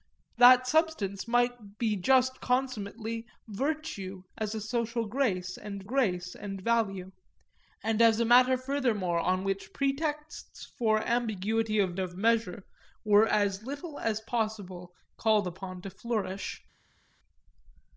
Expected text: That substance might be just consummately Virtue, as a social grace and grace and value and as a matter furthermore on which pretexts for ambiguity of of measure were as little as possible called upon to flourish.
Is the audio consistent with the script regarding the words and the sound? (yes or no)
yes